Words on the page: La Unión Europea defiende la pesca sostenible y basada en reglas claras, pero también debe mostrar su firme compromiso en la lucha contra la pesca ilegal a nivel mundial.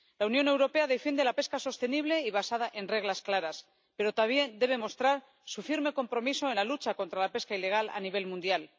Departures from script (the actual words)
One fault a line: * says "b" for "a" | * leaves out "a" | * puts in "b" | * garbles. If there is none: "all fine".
all fine